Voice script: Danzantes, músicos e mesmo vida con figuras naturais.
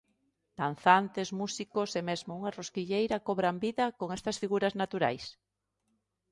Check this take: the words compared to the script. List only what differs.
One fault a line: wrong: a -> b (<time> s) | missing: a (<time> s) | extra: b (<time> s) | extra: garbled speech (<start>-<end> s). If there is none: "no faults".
extra: unha rosquilleira cobran (2.4 s)
extra: estas (4.2 s)